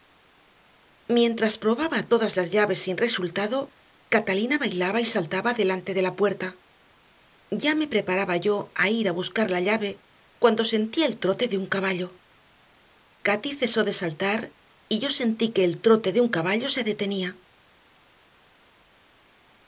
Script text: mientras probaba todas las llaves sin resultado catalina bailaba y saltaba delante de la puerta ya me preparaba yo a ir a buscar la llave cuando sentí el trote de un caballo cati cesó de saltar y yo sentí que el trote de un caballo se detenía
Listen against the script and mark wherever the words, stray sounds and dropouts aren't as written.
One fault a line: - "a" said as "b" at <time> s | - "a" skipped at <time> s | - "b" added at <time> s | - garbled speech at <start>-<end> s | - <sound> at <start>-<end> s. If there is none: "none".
none